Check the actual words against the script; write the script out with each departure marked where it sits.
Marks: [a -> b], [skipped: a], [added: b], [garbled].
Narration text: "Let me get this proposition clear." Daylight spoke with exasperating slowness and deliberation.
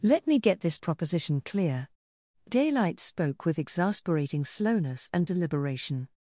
"Let me get this proposition clear." Daylight spoke with exasperating slowness and deliberation.